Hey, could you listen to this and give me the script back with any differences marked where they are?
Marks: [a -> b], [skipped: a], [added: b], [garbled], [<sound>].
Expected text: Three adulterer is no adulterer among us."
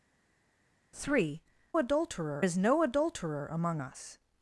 Three adulterer is no adulterer among us."